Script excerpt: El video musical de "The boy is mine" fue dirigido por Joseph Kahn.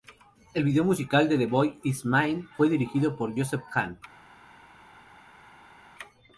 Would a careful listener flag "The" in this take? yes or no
no